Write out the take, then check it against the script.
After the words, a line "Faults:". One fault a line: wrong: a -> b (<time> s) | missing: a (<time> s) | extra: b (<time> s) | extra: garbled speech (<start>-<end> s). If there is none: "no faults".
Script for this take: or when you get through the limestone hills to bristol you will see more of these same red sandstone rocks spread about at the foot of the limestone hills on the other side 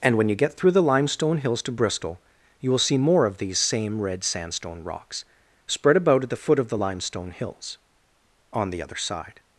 and when you get through the limestone hills to bristol you will see more of these same red sandstone rocks spread about at the foot of the limestone hills on the other side
Faults:
wrong: or -> and (0.0 s)